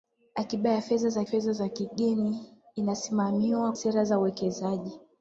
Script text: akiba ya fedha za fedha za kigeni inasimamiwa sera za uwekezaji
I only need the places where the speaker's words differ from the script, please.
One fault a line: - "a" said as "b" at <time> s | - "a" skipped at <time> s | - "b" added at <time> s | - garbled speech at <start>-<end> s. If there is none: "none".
none